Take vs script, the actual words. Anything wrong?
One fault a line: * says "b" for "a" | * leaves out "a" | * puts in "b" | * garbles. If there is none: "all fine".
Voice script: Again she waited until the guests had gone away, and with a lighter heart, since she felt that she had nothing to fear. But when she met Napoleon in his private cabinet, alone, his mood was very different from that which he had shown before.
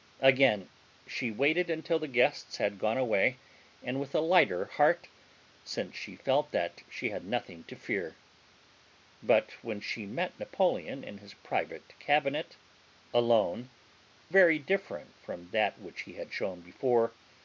* leaves out "his mood was"